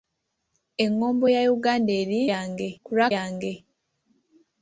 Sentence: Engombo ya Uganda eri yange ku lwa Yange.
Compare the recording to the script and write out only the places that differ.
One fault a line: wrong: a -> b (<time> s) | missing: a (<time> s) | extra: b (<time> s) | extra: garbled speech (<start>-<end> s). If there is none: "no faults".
no faults